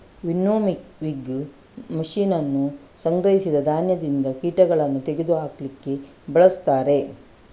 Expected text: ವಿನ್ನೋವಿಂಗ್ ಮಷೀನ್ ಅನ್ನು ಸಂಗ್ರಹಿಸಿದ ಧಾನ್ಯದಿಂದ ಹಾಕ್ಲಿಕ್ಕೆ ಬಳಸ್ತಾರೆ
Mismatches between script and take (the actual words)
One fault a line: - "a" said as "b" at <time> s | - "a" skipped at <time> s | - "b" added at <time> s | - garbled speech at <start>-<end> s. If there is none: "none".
- "ಕೀಟಗಳನ್ನು ತೆಗೆದು" added at 4.4 s